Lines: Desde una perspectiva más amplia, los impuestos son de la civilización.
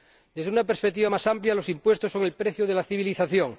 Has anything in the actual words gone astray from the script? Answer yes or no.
yes